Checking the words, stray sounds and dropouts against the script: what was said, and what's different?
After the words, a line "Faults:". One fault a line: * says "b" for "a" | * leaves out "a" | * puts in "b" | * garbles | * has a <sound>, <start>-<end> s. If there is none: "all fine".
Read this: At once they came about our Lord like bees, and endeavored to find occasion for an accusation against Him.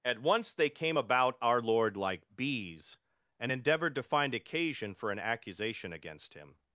At once they came about our Lord like bees, and endeavored to find occasion for an accusation against Him.
Faults:
all fine